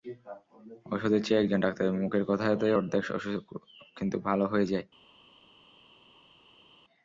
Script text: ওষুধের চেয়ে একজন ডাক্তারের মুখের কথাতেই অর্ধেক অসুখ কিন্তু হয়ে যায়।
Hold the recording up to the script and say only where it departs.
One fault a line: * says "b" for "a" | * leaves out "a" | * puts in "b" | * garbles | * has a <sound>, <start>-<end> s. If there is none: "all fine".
* puts in "ভালো"